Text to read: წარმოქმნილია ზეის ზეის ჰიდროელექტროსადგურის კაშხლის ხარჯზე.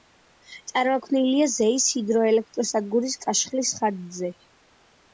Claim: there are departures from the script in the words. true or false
true